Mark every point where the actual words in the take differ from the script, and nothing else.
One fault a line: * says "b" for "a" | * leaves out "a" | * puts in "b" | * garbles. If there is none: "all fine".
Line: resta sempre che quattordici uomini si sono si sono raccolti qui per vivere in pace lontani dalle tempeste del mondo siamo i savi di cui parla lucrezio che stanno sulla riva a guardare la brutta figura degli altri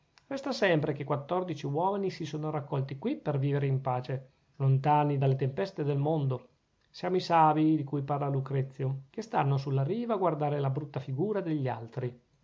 * leaves out "si sono"